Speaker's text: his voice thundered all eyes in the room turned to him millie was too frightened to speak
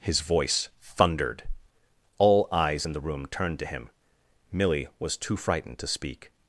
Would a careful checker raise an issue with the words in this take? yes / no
no